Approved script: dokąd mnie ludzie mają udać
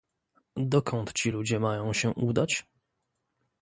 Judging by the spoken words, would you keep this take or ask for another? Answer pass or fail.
fail